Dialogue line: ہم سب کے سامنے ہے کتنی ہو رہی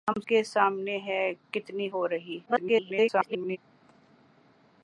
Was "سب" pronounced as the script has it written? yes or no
no